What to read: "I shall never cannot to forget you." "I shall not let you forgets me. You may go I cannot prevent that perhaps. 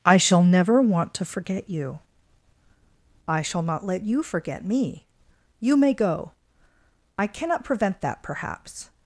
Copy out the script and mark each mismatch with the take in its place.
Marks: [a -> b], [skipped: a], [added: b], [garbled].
"I shall never [cannot -> want] to forget you." "I shall not let you [forgets -> forget] me. You may go I cannot prevent that perhaps.